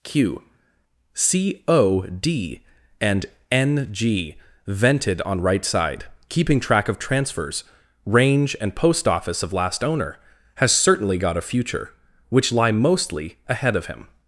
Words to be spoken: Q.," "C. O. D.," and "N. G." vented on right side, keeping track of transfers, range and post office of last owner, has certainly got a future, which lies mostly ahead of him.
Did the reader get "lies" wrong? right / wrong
wrong